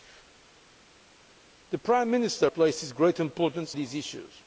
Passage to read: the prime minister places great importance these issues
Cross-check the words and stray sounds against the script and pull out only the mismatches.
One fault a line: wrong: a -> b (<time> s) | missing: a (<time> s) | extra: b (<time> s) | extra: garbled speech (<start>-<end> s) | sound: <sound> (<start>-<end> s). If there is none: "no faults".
no faults